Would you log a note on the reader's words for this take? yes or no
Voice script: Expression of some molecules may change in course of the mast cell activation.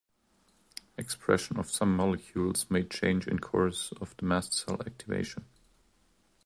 no